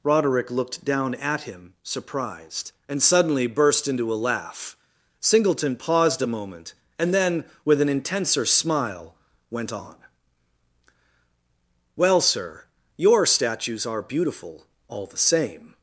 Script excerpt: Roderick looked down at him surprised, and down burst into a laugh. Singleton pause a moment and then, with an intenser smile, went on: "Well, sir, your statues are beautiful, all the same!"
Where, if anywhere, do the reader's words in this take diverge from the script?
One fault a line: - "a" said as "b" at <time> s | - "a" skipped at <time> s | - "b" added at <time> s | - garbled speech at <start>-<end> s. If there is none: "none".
- "down" said as "suddenly" at 3.0 s
- "pause" said as "paused" at 5.8 s